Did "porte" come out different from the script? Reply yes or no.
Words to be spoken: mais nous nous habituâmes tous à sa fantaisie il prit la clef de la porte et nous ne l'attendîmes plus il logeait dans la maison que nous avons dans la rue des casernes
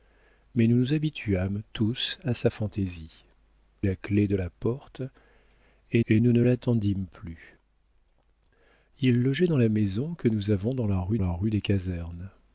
no